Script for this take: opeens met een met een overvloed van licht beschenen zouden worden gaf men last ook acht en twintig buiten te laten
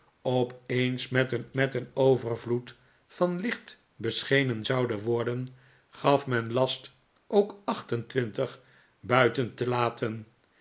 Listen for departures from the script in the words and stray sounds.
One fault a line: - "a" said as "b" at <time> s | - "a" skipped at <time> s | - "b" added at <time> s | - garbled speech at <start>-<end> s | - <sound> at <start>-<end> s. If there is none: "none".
none